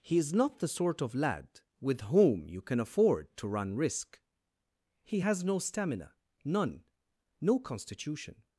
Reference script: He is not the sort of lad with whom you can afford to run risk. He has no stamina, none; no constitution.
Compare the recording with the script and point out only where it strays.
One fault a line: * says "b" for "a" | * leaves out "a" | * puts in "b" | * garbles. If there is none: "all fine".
all fine